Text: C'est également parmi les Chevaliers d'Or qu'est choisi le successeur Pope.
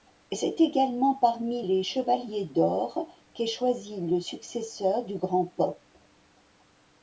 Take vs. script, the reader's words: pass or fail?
fail